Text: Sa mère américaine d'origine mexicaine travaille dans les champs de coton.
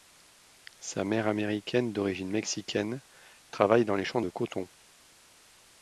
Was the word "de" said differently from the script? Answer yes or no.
no